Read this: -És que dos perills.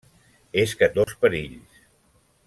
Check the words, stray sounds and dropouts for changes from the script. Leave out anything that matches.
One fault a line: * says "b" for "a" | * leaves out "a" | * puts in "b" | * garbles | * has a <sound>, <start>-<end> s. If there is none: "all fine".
* has a dropout, 1.0-1.1 s